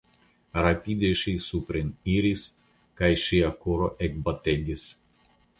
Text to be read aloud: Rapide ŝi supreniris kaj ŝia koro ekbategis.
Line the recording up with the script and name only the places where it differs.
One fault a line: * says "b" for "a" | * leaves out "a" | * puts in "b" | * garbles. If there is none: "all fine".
all fine